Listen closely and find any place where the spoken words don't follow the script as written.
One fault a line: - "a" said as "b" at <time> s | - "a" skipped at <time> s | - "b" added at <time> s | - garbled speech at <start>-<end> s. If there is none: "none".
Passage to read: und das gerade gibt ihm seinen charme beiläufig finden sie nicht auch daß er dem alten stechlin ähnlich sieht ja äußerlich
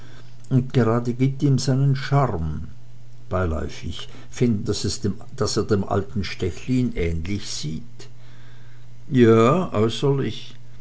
- "das" skipped at 0.7 s
- "sie nicht auch" skipped at 4.7 s